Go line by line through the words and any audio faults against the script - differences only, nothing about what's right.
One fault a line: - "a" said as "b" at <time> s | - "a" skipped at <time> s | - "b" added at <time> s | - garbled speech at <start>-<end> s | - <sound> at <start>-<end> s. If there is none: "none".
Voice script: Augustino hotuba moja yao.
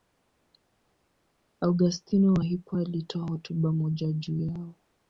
- "wa Hippo alitoa" added at 2.3 s
- "juu" added at 4.1 s